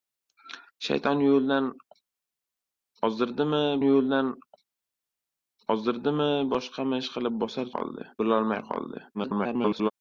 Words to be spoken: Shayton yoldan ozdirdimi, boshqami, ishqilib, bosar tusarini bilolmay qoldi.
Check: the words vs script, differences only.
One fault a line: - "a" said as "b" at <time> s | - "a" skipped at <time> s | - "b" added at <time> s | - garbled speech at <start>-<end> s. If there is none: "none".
- "yoldan ozdirdimi" added at 3.9 s
- "tusarini" said as "qoldi" at 7.8 s
- garbled speech at 9.1-9.9 s